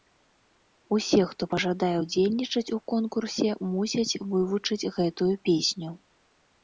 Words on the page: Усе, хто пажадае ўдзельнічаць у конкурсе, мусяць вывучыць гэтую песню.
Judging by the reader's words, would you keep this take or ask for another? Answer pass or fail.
pass